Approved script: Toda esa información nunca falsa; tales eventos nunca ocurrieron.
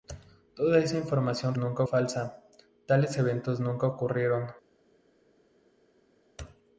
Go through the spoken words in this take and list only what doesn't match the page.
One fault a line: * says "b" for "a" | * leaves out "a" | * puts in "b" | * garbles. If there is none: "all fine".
all fine